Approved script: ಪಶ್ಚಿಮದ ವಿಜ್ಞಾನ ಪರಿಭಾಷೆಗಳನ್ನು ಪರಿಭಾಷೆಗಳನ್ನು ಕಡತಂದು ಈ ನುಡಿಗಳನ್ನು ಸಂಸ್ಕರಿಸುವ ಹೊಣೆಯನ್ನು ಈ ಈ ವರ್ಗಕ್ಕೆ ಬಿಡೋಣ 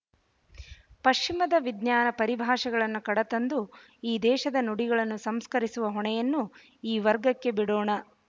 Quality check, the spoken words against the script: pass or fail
fail